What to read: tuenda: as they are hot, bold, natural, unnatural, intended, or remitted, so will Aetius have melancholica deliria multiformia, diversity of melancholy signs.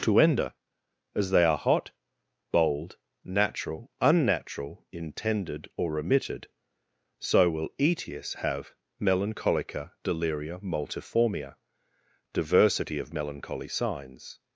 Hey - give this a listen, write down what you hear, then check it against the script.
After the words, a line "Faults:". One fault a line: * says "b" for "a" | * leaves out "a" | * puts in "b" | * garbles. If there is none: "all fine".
tuenda: as they are hot, bold, natural, unnatural, intended, or remitted, so will Aetius have melancholica deliria multiformia, diversity of melancholy signs.
Faults:
all fine